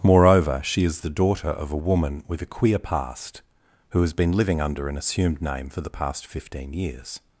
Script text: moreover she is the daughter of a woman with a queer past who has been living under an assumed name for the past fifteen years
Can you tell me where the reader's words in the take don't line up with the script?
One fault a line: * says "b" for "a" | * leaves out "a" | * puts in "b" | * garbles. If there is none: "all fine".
all fine